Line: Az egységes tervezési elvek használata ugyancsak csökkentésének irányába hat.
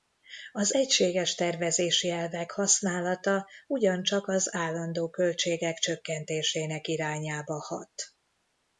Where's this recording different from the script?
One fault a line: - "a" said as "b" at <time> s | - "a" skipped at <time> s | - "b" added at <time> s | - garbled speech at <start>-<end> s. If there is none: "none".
- "az állandó költségek" added at 4.3 s